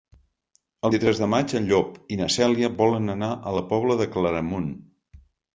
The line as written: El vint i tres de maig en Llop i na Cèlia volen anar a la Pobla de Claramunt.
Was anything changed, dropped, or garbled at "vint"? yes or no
yes